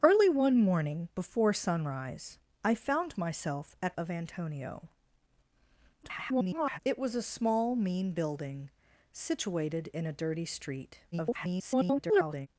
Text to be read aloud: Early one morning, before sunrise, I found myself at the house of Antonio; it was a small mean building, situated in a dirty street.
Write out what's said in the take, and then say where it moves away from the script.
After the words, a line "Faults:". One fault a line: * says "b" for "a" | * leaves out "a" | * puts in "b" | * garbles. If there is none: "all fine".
Early one morning, before sunrise, I found myself at of Antonio; [garbled] it was a small mean building, situated in a dirty street. [garbled]
Faults:
* leaves out "the house"
* garbles
* garbles